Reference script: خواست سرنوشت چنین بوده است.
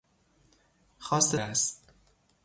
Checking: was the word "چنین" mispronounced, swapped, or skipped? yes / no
yes